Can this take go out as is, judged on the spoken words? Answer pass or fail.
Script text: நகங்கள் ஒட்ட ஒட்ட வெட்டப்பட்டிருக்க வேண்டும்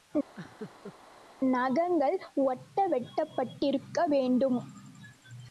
fail